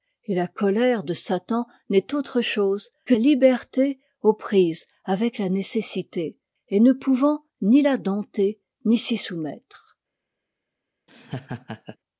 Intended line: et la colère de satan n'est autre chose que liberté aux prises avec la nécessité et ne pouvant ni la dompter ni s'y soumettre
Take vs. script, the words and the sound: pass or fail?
fail